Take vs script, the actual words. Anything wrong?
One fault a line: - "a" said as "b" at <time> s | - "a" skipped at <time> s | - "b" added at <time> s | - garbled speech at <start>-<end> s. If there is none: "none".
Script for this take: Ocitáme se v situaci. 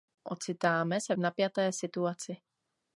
- "napjaté" added at 1.2 s